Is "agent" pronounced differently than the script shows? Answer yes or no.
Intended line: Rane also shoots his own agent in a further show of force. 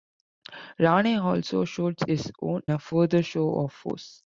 yes